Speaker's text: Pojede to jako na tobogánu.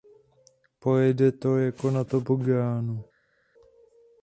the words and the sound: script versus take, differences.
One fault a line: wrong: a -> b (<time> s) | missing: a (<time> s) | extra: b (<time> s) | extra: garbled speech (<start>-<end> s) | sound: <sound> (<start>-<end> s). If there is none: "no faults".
no faults